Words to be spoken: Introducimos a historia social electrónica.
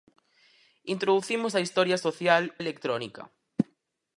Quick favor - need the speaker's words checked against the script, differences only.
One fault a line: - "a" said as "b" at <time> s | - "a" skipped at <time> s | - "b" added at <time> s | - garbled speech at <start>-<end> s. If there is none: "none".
none